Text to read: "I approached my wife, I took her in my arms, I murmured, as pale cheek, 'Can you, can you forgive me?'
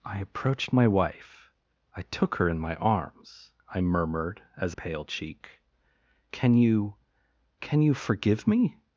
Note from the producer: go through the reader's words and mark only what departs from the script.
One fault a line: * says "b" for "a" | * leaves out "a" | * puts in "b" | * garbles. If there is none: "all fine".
all fine